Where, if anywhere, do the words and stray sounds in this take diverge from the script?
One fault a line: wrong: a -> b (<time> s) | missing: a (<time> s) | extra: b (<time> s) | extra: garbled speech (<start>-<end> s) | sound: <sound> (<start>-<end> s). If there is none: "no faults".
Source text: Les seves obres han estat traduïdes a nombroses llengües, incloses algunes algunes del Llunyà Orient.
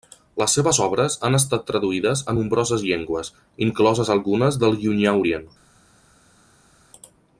missing: algunes (4.6 s)